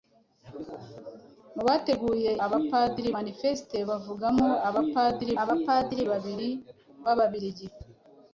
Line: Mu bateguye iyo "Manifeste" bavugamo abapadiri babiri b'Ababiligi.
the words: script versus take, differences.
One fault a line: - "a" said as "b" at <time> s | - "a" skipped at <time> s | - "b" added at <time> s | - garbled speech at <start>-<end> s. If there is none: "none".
- "iyo" said as "abapadiri" at 2.5 s
- "abapadiri" added at 5.4 s